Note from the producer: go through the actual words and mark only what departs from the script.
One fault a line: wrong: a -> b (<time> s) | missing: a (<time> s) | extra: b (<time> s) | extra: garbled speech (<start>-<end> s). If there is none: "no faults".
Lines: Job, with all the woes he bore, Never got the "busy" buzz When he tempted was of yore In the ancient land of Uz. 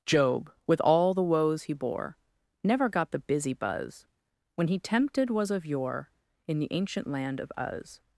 no faults